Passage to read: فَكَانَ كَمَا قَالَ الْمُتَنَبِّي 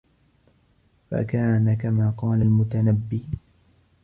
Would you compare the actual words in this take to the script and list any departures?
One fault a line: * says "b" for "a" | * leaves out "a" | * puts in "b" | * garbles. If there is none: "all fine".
all fine